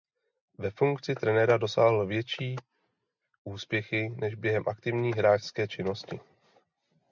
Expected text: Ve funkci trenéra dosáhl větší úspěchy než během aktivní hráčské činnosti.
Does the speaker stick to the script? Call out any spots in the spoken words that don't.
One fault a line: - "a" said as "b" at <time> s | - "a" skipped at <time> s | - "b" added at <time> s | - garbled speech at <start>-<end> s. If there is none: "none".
none